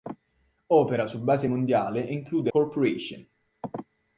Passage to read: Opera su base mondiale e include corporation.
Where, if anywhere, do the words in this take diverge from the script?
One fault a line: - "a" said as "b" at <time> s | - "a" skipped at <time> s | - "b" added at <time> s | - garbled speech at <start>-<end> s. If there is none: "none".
none